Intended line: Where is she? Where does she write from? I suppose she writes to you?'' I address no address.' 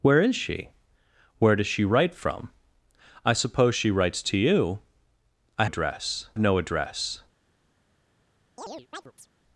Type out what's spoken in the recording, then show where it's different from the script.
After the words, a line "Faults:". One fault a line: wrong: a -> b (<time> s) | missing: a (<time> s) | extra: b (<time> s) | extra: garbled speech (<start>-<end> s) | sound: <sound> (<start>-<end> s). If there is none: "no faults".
Where is she? Where does she write from? I suppose she writes to you?'' I address no address.'
Faults:
sound: chirp (8.6-9.3 s)